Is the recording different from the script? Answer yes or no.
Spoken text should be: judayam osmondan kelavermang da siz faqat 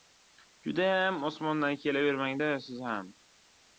yes